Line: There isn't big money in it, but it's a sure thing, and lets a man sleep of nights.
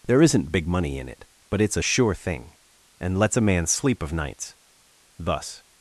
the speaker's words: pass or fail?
fail